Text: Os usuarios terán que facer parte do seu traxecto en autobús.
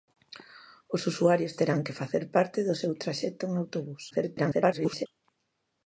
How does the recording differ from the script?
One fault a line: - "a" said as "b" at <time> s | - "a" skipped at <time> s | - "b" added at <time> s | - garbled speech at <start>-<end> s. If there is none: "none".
- garbled speech at 4.1-5.1 s